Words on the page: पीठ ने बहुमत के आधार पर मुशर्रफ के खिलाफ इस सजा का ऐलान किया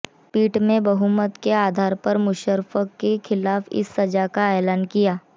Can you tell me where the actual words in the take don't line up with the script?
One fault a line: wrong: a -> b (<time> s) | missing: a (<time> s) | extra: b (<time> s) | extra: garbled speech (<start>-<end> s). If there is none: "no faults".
no faults